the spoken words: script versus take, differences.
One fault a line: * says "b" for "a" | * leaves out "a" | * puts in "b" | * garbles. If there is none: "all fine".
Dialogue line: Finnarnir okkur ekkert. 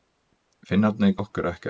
all fine